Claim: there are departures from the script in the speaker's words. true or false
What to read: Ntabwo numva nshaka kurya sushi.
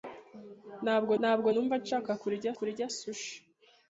true